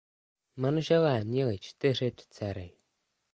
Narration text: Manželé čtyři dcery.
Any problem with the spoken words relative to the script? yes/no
yes